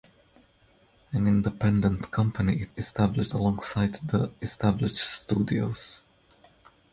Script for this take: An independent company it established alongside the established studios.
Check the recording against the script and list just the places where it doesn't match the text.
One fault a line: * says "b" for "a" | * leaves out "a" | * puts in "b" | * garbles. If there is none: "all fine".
all fine